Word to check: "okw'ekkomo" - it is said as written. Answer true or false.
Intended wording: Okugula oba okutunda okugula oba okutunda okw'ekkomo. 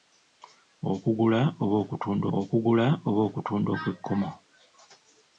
true